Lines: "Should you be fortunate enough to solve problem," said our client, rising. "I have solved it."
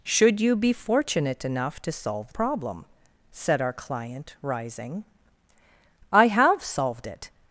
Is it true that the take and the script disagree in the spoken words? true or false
false